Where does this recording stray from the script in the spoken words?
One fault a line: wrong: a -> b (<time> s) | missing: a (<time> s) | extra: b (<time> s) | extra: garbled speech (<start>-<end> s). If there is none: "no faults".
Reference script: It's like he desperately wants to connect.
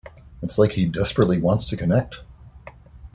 no faults